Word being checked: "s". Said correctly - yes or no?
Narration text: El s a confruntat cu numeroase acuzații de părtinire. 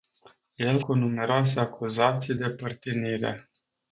no